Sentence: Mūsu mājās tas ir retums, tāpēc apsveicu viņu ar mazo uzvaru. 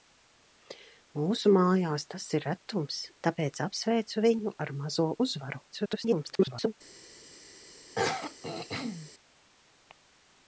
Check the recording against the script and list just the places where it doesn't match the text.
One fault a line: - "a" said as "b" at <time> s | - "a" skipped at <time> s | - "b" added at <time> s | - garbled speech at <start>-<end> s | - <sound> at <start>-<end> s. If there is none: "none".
- garbled speech at 5.7-6.7 s
- throat clearing at 7.9-9.1 s